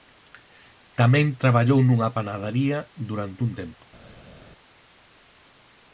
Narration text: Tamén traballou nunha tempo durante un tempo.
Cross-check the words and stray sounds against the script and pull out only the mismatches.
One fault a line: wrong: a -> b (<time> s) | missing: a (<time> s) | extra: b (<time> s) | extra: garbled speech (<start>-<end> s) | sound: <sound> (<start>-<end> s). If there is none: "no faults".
wrong: tempo -> panadaría (2.2 s)